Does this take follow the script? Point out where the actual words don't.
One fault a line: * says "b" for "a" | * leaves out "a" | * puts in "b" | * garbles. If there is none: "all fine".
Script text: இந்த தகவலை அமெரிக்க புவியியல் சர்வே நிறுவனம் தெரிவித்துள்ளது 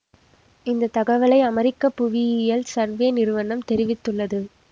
all fine